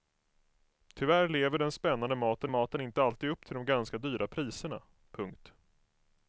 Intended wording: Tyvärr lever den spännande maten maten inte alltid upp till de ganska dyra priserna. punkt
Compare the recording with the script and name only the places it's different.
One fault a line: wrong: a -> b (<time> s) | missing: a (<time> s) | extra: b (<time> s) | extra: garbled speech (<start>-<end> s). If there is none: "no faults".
no faults